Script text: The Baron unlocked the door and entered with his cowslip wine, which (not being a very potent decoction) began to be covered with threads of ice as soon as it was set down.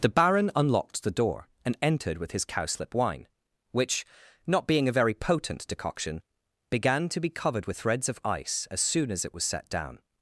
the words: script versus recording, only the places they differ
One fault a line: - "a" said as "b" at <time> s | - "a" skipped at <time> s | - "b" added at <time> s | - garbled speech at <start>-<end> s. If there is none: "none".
none